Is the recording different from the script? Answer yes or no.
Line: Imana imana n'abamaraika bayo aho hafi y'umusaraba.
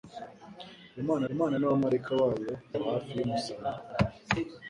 no